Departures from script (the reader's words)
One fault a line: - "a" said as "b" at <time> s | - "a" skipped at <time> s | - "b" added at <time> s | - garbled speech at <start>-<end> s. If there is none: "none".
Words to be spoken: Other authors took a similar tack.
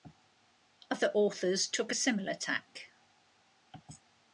none